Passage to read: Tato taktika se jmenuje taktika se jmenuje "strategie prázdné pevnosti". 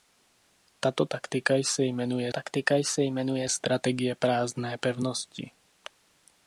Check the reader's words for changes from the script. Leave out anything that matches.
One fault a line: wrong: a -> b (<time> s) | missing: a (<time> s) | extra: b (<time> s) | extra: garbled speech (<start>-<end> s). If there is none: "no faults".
no faults